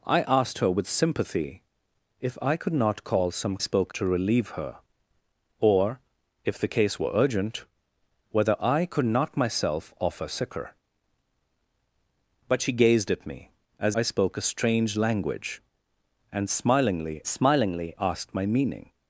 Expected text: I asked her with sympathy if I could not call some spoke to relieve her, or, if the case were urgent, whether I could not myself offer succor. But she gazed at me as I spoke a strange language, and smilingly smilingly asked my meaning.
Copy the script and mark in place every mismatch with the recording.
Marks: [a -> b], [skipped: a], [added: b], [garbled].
I asked her with sympathy if I could not call some spoke to relieve her, or, if the case were urgent, whether I could not myself offer succor. But she gazed at me as I spoke a strange language, and smilingly smilingly asked my meaning.